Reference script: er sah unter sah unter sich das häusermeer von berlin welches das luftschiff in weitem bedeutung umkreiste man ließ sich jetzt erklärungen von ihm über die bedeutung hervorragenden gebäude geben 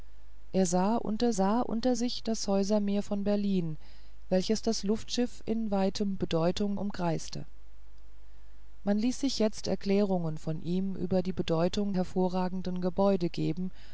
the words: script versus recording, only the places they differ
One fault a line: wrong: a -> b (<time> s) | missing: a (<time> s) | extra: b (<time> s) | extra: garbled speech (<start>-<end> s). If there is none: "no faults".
no faults